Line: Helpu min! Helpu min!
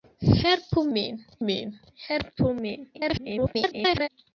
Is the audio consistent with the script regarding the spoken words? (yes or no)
no